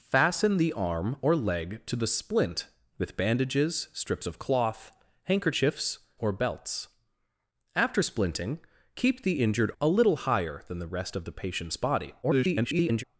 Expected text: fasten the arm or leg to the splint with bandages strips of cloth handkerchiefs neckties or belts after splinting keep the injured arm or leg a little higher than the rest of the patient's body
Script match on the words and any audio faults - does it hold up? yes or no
no